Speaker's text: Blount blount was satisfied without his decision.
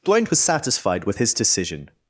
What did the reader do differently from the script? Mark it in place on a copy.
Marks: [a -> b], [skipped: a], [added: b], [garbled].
Blount [skipped: blount] was satisfied [without -> with] his decision.